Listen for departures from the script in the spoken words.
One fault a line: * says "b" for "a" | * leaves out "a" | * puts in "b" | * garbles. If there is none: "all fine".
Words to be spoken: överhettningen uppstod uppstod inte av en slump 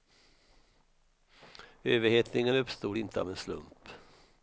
* leaves out "uppstod"